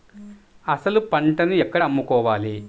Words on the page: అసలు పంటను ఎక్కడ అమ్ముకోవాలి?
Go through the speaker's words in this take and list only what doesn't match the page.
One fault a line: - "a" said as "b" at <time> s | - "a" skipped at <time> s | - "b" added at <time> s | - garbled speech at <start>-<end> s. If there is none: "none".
none